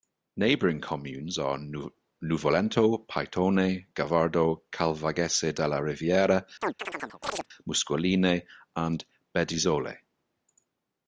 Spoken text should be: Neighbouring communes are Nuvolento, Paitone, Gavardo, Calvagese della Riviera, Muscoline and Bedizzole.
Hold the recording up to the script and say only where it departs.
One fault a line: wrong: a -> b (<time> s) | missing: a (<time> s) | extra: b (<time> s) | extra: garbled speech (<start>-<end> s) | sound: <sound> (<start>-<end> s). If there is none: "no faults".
sound: chirp (6.6-7.5 s)